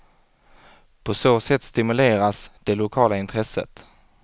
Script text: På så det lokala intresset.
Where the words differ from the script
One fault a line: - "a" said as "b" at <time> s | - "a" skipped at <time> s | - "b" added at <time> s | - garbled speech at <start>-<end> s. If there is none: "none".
- "sätt stimuleras" added at 1.4 s